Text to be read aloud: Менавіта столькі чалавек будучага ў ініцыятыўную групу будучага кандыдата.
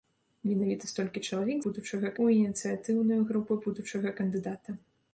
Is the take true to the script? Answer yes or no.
yes